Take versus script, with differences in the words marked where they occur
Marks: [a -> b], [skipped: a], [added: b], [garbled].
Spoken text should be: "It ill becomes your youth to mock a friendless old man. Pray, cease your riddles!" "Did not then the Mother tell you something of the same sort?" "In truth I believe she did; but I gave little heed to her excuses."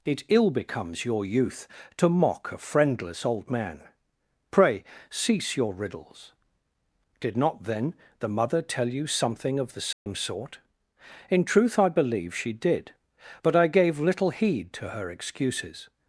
"It ill becomes your youth to mock a friendless old man. Pray, cease your riddles!" "Did not then the Mother tell you something of the same sort?" "In truth I believe she did; but I gave little heed to her excuses."